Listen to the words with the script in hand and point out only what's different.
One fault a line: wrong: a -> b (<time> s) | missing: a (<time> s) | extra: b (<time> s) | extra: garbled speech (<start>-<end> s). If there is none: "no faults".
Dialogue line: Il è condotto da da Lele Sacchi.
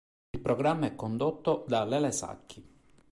extra: programma (0.4 s)
missing: da (1.9 s)